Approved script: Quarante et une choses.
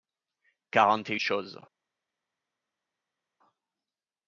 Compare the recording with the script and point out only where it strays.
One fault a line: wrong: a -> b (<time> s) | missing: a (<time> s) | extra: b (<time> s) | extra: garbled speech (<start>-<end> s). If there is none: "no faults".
missing: une (1.1 s)